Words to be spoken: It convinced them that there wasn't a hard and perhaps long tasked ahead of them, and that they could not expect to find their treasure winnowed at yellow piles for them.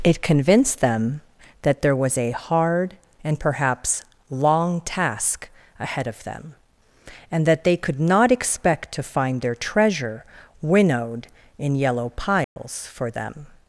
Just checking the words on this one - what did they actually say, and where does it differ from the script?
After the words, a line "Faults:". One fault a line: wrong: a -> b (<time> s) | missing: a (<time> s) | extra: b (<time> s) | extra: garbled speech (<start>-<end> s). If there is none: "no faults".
It convinced them that there was a hard and perhaps long task ahead of them, and that they could not expect to find their treasure winnowed in yellow piles for them.
Faults:
wrong: wasn't -> was (1.9 s)
wrong: tasked -> task (4.8 s)
wrong: at -> in (11.6 s)